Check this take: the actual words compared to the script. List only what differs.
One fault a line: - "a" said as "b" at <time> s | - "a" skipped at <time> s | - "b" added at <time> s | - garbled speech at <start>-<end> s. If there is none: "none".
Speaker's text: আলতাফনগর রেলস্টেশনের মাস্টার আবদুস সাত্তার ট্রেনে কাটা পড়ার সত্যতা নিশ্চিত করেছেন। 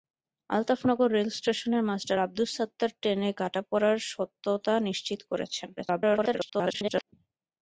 - garbled speech at 5.8-7.1 s